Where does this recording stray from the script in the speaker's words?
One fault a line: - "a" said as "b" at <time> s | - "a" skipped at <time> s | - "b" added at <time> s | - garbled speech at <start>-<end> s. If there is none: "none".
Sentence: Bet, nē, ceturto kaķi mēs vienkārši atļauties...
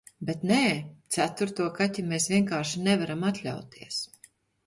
- "nevaram" added at 2.9 s